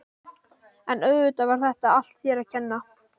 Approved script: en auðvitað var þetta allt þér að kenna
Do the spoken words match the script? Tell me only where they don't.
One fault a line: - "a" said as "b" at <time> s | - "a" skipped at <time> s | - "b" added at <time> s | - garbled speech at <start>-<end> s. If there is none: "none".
none